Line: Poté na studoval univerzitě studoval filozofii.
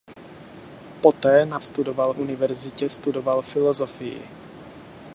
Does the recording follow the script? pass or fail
pass